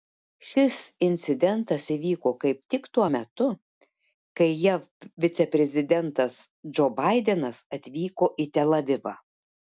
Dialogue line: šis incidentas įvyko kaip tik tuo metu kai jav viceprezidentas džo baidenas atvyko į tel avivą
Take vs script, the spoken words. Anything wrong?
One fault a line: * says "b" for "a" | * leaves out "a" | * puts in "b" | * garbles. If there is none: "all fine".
all fine